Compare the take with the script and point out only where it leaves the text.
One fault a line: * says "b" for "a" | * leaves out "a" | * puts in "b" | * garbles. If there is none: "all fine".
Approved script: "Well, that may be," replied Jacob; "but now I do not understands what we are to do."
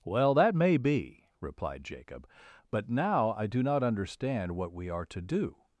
* says "understand" for "understands"